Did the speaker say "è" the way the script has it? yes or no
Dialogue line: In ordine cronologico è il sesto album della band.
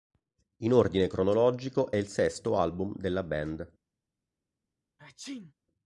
yes